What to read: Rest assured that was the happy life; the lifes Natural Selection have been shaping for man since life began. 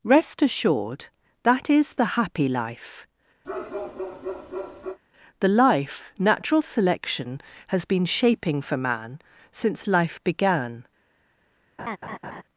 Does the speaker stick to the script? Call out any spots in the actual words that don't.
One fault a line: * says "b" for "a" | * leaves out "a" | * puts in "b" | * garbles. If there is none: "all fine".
* says "is" for "was"
* says "life" for "lifes"
* says "has" for "have"